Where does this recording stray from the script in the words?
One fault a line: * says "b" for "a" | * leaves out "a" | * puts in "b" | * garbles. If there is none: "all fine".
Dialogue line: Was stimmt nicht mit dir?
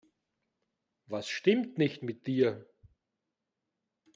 all fine